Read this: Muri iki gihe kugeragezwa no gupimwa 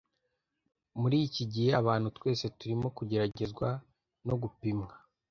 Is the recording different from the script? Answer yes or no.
yes